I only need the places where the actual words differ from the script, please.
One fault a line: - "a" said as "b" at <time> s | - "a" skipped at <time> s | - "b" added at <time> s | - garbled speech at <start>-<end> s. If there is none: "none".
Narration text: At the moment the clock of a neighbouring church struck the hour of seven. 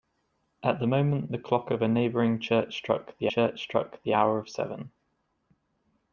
- "church struck the" added at 3.3 s